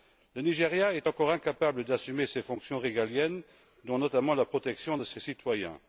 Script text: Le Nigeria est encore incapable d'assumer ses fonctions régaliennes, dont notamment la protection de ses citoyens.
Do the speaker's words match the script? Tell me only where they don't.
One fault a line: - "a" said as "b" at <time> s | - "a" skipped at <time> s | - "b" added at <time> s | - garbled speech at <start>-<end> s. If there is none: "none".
none